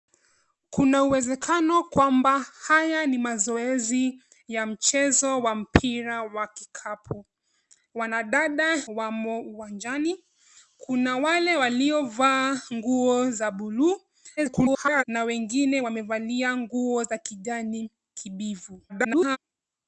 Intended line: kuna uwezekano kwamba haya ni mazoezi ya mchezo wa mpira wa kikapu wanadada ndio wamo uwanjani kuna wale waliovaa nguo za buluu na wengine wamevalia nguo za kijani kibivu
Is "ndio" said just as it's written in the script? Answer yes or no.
no